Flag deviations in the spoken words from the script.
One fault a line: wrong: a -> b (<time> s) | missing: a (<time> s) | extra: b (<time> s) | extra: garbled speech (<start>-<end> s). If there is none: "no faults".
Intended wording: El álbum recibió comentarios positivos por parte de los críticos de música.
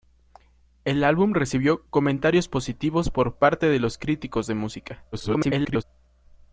extra: garbled speech (5.1-5.8 s)